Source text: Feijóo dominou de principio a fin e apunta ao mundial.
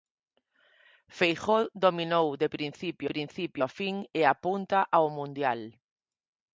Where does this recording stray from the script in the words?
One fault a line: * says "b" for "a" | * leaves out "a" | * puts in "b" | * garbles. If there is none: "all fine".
* puts in "principio"